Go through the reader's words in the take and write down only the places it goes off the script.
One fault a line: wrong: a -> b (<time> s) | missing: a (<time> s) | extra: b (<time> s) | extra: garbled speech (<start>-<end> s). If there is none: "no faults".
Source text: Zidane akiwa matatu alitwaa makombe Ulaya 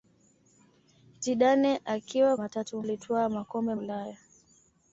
no faults